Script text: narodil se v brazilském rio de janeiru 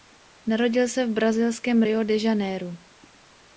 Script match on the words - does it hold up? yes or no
yes